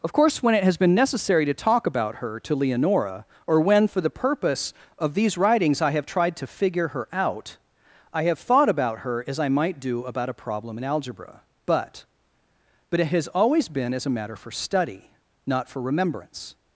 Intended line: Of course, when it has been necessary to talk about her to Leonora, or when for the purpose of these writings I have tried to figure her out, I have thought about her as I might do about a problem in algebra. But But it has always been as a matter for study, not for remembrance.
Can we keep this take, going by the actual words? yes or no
yes